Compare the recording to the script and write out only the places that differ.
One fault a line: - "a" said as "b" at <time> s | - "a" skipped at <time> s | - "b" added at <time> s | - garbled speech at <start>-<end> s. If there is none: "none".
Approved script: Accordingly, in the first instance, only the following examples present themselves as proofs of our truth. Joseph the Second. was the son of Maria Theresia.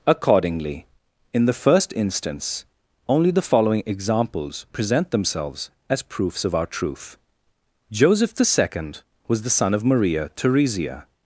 none